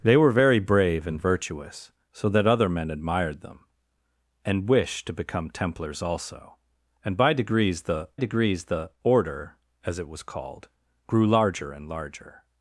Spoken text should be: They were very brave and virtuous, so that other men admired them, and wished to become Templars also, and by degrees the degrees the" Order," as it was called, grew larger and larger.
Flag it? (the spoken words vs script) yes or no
no